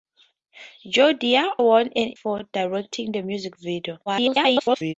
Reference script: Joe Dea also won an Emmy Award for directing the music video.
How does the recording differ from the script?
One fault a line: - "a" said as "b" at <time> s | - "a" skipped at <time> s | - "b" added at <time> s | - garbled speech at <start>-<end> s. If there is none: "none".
- "also" skipped at 1.5 s
- "Emmy Award" skipped at 2.2 s
- garbled speech at 4.1-4.9 s